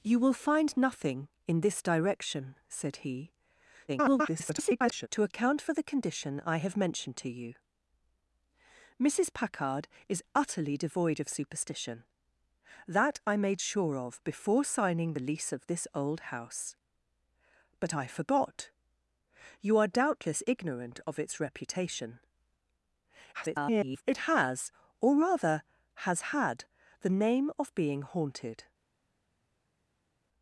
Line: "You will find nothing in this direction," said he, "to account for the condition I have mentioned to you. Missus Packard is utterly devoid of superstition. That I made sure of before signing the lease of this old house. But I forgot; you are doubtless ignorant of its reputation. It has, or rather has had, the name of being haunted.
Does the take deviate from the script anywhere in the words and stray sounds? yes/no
yes